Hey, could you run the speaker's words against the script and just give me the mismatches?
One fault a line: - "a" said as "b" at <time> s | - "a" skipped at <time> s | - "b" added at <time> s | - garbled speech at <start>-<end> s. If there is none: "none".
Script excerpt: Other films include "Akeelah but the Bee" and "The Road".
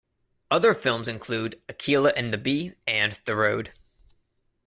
- "but" said as "and" at 2.2 s